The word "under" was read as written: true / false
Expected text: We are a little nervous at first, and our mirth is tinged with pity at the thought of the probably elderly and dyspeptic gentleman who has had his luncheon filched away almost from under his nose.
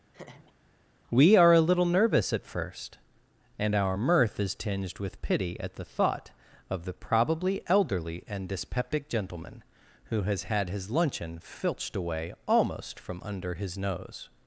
true